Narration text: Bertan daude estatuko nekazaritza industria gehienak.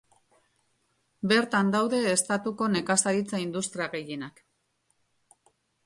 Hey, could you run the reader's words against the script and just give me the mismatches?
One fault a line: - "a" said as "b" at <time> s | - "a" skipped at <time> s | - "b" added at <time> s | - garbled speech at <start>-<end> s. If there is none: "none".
none